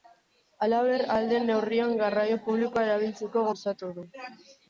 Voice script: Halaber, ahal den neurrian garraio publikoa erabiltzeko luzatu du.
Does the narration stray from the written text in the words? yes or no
no